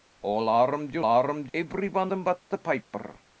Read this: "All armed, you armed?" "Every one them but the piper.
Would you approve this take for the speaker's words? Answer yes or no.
yes